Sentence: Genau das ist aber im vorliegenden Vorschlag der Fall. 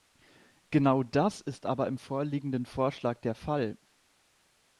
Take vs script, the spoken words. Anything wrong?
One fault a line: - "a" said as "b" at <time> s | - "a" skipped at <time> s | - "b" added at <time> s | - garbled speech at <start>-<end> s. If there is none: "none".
none